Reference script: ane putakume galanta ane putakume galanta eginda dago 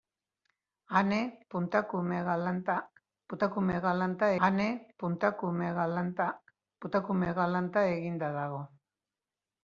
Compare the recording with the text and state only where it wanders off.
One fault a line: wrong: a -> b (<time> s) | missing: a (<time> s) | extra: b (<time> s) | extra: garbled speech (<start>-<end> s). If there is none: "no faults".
no faults